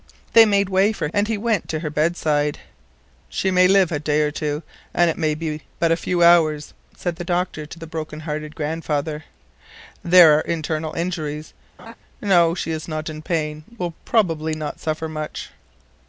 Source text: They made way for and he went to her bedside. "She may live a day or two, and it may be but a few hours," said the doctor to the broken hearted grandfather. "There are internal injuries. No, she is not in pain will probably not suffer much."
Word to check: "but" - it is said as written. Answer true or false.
true